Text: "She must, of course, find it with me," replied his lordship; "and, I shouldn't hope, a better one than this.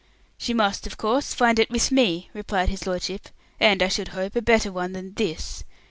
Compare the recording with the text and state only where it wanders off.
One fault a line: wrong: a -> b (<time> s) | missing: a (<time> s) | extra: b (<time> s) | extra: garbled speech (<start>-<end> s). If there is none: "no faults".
wrong: shouldn't -> should (3.9 s)